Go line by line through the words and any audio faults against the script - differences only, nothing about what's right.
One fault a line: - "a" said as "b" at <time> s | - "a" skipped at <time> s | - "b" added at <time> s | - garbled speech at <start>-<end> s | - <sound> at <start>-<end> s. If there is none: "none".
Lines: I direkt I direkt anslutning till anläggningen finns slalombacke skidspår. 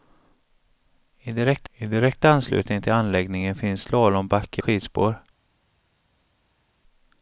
none